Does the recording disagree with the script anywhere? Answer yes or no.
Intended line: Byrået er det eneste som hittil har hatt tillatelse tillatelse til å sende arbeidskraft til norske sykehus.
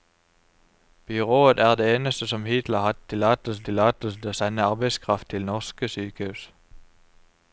no